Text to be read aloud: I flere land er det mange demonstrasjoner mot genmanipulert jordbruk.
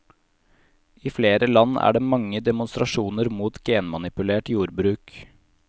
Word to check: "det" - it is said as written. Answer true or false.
true